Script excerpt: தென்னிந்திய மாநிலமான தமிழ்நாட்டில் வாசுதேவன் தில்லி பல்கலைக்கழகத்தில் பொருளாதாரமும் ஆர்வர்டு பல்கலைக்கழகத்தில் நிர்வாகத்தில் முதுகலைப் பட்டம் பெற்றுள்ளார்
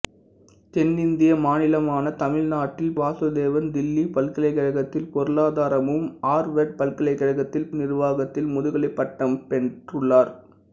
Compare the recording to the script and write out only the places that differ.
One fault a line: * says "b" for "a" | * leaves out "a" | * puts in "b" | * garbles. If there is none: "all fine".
all fine